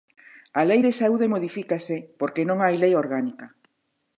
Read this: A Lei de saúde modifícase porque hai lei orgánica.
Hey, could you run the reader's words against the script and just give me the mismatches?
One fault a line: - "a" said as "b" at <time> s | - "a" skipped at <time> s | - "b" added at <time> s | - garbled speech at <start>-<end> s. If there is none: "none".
- "non" added at 2.5 s